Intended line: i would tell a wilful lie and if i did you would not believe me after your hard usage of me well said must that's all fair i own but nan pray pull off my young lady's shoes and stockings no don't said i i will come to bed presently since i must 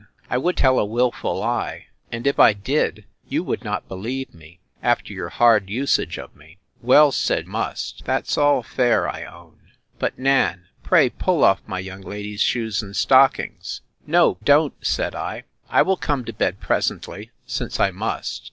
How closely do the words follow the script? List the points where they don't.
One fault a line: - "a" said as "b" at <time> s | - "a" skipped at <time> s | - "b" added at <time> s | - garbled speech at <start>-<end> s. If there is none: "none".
none